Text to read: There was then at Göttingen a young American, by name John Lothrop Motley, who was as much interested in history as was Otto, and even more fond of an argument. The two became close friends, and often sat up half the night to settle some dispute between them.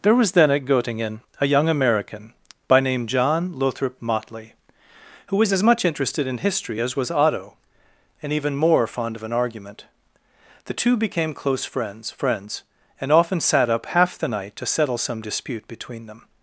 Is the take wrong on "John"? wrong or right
right